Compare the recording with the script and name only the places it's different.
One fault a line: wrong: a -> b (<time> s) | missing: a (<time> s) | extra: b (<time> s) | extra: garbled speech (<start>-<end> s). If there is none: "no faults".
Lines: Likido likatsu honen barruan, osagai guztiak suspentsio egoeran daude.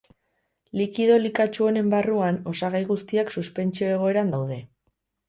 no faults